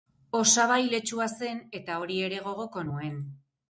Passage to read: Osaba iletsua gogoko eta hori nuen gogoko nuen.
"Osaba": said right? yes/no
yes